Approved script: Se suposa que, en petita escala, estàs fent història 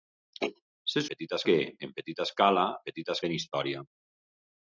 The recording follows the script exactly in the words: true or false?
false